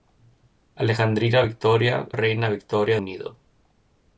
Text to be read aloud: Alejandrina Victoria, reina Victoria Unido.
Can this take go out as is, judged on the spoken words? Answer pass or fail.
pass